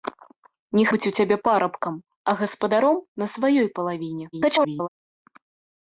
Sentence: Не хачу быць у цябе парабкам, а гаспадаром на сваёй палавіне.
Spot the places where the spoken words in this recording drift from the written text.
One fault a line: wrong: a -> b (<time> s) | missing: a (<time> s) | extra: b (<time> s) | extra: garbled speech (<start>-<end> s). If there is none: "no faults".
missing: хачу (0.8 s)
extra: garbled speech (4.3-4.9 s)